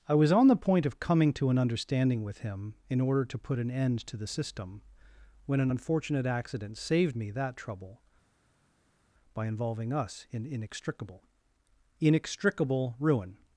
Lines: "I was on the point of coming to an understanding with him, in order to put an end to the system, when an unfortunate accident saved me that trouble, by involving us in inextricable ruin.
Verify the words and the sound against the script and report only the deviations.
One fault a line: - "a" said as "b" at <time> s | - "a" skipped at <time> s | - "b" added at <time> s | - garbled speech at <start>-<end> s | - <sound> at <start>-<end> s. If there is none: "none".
- "inextricable" added at 12.0 s